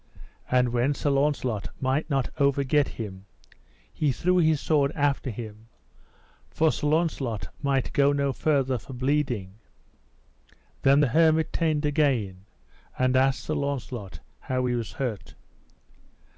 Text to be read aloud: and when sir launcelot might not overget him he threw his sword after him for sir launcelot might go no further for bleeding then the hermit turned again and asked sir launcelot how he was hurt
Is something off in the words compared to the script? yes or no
no